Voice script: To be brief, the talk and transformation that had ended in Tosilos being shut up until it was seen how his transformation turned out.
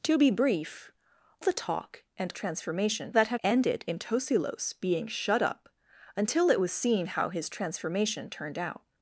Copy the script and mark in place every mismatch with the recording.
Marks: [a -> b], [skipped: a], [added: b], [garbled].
To be brief, the talk and transformation that had ended in Tosilos being shut up until it was seen how his transformation turned out.